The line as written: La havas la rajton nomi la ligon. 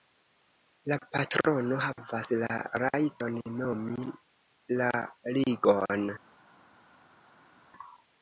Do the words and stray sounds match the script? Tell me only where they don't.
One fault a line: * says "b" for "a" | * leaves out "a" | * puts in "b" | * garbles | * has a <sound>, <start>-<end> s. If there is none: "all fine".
* puts in "patrono"